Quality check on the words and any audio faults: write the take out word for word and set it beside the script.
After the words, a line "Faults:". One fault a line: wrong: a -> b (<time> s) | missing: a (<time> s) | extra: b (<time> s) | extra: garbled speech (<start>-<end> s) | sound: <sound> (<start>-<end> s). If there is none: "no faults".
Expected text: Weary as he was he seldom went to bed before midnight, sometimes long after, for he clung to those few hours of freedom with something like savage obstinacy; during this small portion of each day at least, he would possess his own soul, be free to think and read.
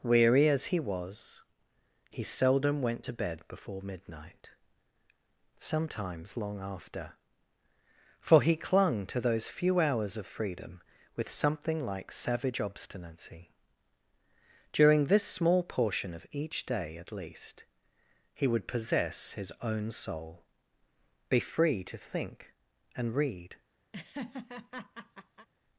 Weary as he was he seldom went to bed before midnight, sometimes long after, for he clung to those few hours of freedom with something like savage obstinacy; during this small portion of each day at least, he would possess his own soul, be free to think and read.
Faults:
sound: laugh (23.9-25.5 s)